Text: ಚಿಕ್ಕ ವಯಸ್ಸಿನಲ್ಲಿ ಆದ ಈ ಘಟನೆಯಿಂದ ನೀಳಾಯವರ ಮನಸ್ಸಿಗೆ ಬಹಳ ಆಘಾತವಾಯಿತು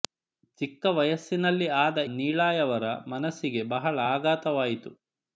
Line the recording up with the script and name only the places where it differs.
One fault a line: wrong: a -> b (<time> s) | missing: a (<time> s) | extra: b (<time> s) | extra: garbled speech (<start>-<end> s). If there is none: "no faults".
missing: ಈ ಘಟನೆಯಿಂದ (2.0 s)